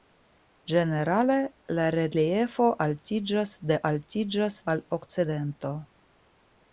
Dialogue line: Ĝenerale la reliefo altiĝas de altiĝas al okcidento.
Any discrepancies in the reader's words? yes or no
no